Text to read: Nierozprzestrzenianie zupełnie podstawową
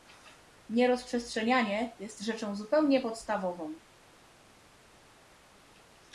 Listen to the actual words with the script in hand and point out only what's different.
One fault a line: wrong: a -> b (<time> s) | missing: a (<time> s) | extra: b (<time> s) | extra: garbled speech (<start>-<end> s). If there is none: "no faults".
extra: jest rzeczą (2.0 s)